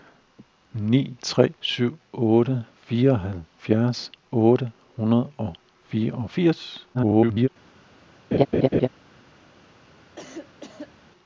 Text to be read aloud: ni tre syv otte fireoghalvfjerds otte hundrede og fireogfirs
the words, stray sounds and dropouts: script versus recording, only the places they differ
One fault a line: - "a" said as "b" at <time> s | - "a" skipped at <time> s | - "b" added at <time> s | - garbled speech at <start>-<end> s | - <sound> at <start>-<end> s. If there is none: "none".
- garbled speech at 6.9-7.5 s
- laugh at 8.3-8.9 s
- cough at 10.2-11.0 s